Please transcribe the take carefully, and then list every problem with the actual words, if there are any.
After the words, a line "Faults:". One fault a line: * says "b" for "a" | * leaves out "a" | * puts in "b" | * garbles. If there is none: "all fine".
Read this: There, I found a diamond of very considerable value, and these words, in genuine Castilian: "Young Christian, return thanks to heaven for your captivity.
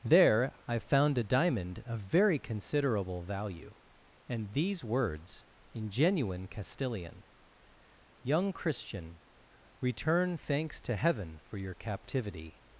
There, I found a diamond of very considerable value, and these words, in genuine Castilian: "Young Christian, return thanks to heaven for your captivity.
Faults:
all fine